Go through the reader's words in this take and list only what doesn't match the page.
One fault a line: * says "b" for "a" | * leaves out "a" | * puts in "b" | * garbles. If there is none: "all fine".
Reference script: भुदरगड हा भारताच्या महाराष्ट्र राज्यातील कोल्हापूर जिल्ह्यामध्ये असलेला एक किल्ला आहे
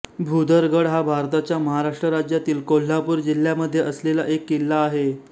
all fine